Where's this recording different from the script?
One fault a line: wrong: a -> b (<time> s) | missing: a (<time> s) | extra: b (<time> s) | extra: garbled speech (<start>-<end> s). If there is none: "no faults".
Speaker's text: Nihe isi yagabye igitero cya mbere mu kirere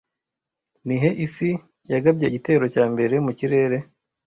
no faults